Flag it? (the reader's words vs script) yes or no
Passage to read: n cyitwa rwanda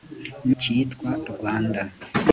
no